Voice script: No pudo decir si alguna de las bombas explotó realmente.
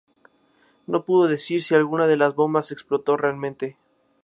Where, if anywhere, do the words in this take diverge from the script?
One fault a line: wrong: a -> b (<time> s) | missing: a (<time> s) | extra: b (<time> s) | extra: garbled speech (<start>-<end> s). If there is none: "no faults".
no faults